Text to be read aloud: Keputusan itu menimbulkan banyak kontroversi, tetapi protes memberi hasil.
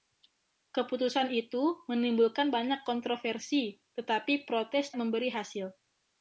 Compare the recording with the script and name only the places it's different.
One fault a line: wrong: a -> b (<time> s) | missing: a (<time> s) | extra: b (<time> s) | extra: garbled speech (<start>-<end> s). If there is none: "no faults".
no faults